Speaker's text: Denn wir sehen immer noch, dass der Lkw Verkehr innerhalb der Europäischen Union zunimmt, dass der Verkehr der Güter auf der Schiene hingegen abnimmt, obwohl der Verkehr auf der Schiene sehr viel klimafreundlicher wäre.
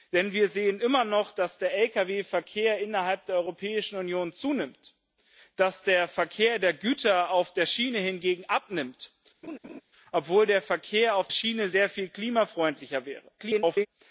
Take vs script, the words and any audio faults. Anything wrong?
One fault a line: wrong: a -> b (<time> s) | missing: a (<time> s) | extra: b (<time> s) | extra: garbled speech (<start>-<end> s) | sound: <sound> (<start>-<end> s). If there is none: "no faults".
sound: laugh (9.4-9.8 s)
missing: der (11.3 s)
extra: garbled speech (13.4-13.9 s)